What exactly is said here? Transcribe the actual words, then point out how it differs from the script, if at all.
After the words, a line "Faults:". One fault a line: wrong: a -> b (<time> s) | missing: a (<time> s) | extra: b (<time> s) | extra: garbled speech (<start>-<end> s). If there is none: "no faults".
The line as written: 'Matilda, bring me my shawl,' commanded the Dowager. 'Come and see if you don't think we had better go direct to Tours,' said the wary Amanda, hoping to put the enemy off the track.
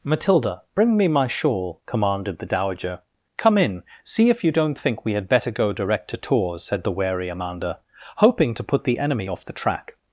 'Matilda, bring me my shawl,' commanded the Dowager. 'Come in see if you don't think we had better go direct to Tours,' said the wary Amanda, hoping to put the enemy off the track.
Faults:
wrong: and -> in (3.6 s)